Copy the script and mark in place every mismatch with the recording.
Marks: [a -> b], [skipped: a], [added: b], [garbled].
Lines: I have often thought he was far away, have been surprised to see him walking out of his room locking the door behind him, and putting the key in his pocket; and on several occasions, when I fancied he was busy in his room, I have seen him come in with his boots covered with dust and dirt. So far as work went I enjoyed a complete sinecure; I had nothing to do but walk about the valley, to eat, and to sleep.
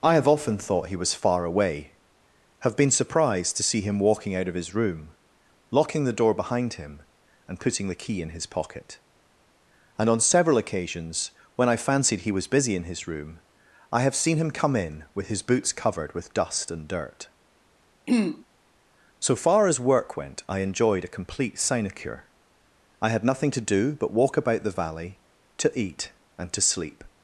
I have often thought he was far away, have been surprised to see him walking out of his room locking the door behind him, and putting the key in his pocket; and on several occasions, when I fancied he was busy in his room, I have seen him come in with his boots covered with dust and dirt. So far as work went I enjoyed a complete sinecure; I had nothing to do but walk about the valley, to eat, and to sleep.